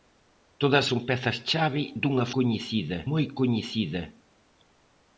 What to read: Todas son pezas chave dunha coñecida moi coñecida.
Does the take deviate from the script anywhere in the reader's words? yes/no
no